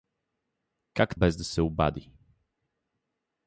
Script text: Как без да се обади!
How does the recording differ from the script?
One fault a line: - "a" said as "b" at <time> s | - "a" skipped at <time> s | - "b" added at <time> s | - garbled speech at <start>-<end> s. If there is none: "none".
none